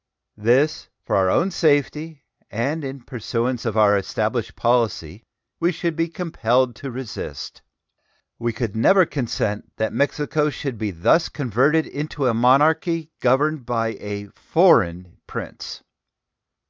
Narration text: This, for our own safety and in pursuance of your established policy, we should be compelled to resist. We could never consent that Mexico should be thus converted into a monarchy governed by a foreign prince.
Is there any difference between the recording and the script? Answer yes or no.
yes